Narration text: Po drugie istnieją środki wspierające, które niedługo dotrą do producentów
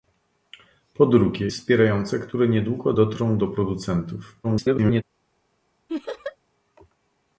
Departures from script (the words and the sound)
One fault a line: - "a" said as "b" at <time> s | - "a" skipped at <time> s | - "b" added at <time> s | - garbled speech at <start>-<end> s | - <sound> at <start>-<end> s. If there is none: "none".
- "istnieją środki" skipped at 1.5 s
- garbled speech at 4.4-5.0 s
- laugh at 5.9-6.4 s